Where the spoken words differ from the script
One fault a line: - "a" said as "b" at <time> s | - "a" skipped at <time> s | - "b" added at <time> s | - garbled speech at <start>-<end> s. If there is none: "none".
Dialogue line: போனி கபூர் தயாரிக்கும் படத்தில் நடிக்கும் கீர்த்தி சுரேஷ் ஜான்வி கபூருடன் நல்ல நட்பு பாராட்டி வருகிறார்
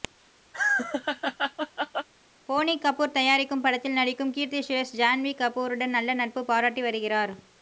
none